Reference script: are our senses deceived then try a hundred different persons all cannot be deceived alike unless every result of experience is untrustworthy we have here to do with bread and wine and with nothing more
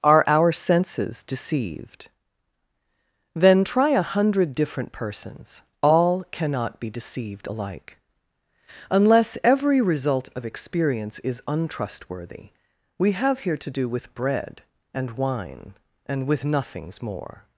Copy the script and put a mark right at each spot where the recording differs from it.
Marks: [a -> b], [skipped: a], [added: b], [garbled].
are our senses deceived then try a hundred different persons all cannot be deceived alike unless every result of experience is untrustworthy we have here to do with bread and wine and with [nothing -> nothings] more